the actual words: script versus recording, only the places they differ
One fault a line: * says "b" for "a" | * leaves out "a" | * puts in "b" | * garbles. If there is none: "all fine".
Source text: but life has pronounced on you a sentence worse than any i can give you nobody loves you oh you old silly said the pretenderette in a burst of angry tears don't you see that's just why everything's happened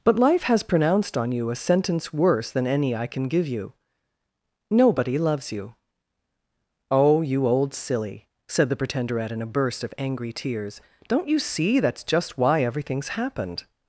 all fine